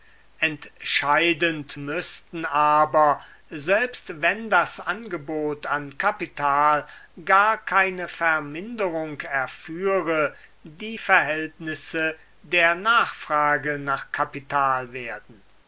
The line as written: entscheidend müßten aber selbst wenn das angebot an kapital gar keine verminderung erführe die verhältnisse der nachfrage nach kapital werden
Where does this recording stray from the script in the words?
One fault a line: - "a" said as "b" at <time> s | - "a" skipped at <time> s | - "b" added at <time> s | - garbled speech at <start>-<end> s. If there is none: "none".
none